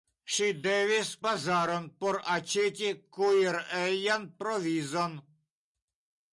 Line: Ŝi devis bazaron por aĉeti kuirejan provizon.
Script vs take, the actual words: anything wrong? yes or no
no